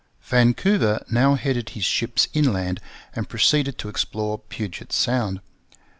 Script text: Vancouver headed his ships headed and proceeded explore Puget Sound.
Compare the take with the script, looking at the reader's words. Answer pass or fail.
fail